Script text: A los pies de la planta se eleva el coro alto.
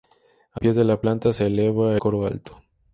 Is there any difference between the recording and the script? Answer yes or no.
yes